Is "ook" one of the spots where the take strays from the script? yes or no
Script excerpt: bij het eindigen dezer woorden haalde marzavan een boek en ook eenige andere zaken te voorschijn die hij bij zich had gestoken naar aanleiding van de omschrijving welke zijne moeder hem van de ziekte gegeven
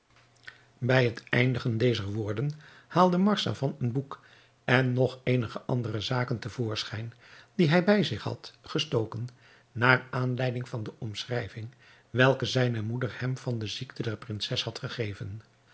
yes